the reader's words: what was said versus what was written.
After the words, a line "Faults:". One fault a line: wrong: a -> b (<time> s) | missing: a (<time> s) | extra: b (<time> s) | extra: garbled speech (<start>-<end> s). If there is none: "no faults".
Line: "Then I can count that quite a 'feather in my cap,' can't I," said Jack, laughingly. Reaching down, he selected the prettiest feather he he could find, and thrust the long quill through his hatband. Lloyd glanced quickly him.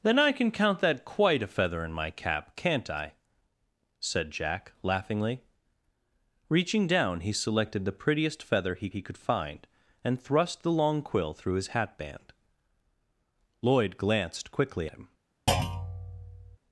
"Then I can count that quite a 'feather in my cap,' can't I," said Jack, laughingly. Reaching down, he selected the prettiest feather he he could find, and thrust the long quill through his hatband. Lloyd glanced quickly him.
Faults:
no faults